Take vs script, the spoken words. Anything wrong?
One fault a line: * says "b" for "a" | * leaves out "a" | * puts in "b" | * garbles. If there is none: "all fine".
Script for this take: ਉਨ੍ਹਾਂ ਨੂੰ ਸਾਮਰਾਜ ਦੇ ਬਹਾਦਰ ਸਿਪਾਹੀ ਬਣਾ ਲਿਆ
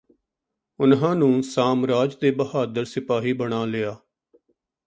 all fine